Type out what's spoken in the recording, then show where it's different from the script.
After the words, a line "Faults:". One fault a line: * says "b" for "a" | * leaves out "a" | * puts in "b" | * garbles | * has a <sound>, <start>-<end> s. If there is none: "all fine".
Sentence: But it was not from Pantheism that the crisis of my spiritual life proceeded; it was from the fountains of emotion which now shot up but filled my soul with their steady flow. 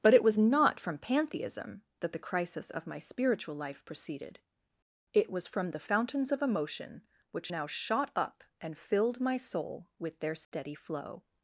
But it was not from Pantheism that the crisis of my spiritual life proceeded; it was from the fountains of emotion which now shot up and filled my soul with their steady flow.
Faults:
* says "and" for "but"
* has a dropout, 10.4-10.5 s